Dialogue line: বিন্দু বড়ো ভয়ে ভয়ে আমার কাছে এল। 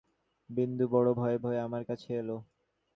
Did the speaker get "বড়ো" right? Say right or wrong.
right